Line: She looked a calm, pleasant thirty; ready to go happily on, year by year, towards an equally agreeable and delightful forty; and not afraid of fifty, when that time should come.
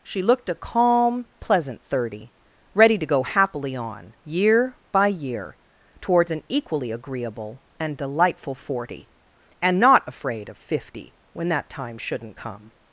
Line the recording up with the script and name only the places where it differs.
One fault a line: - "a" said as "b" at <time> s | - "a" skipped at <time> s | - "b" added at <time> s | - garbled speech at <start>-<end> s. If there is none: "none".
- "should" said as "shouldn't" at 12.0 s